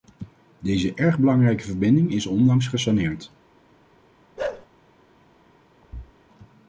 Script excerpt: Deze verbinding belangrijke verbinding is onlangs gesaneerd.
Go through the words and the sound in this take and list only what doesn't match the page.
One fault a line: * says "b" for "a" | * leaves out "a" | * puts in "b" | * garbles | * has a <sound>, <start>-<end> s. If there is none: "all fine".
* says "erg" for "verbinding"
* has a bark, 4.4-4.7 s
* has a thud, 5.8-6.1 s